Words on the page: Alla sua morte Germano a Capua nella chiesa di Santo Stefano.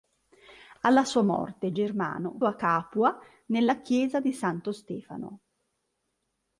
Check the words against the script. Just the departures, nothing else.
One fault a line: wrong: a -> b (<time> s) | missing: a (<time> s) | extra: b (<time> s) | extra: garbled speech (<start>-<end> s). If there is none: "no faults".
no faults